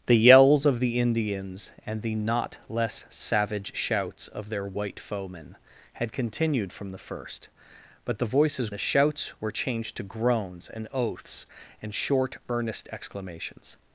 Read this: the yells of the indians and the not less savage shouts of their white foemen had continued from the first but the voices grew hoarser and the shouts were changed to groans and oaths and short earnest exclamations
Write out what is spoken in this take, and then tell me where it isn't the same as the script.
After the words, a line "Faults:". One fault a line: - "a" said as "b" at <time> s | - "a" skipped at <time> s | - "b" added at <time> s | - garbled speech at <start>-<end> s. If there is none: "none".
the yells of the indians and the not less savage shouts of their white foemen had continued from the first but the voices the shouts were changed to groans and oaths and short earnest exclamations
Faults:
- "grew hoarser and" skipped at 8.7 s